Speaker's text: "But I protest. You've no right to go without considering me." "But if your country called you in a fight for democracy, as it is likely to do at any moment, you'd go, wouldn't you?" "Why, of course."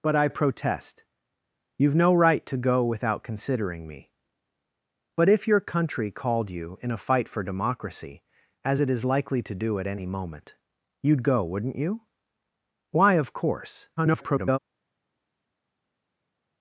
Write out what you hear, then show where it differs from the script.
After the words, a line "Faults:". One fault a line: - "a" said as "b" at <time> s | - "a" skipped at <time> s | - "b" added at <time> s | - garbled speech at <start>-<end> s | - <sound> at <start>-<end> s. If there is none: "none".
"But I protest. You've no right to go without considering me." "But if your country called you in a fight for democracy, as it is likely to do at any moment, you'd go, wouldn't you?" "Why, of course." [garbled]
Faults:
- garbled speech at 14.0-14.6 s